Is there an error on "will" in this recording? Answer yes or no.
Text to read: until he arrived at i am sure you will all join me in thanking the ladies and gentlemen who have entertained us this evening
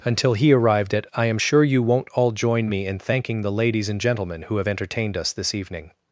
yes